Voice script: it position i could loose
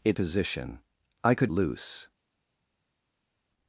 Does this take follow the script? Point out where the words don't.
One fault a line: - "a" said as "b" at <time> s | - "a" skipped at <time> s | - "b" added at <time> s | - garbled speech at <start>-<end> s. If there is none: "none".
none